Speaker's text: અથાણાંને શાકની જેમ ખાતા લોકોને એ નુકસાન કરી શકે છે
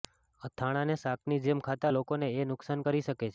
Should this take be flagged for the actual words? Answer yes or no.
no